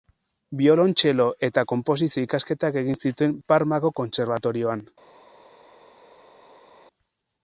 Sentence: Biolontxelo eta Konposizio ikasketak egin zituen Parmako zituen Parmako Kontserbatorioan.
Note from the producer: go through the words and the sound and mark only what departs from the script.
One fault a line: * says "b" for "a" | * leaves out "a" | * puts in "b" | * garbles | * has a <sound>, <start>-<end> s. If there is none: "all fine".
* leaves out "zituen Parmako"